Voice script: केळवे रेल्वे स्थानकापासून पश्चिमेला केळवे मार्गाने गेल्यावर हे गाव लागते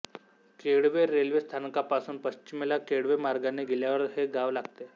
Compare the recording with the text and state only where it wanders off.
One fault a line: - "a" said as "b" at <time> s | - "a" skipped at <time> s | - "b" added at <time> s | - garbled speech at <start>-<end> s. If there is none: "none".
none